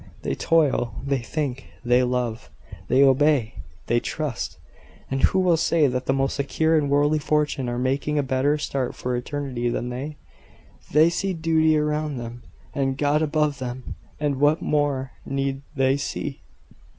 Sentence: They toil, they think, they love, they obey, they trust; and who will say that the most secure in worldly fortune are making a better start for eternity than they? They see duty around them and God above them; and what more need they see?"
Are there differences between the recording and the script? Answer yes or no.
no